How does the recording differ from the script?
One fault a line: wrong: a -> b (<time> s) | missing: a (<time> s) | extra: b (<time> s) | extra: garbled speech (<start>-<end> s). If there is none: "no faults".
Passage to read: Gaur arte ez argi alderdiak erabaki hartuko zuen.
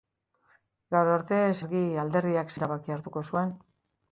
no faults